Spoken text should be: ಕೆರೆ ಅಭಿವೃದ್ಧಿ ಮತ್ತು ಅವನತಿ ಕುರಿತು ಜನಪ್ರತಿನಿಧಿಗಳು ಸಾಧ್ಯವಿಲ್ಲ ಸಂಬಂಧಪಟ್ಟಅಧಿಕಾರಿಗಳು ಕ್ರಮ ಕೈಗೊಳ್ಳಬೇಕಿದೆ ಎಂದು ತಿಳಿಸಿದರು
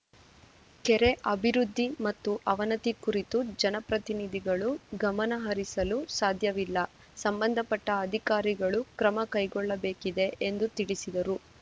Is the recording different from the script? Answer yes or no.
yes